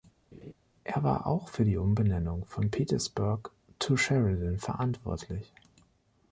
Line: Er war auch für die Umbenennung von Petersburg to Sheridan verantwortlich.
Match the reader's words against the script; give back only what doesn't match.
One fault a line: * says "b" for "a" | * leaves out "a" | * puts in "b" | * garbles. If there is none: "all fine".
all fine